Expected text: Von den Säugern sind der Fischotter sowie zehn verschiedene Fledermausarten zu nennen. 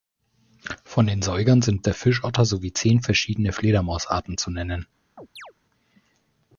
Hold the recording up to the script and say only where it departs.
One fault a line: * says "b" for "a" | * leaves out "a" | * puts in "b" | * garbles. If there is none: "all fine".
all fine